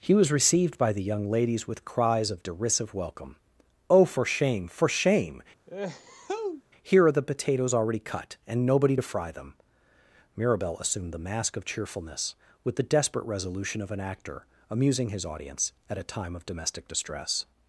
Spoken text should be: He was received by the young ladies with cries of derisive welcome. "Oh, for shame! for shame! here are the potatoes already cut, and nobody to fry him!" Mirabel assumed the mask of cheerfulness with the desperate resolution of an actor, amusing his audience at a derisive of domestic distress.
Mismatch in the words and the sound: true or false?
true